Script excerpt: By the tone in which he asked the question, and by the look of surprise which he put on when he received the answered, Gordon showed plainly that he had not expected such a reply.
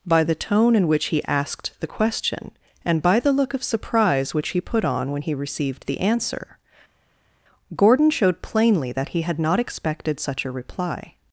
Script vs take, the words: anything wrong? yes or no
yes